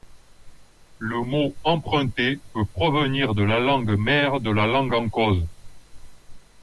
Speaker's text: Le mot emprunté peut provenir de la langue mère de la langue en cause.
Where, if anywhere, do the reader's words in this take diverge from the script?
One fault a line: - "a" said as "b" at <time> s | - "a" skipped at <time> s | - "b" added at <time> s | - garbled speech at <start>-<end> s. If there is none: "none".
none